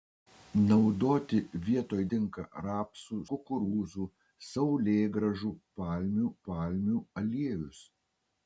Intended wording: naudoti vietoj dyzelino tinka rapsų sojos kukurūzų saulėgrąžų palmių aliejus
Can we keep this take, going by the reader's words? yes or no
no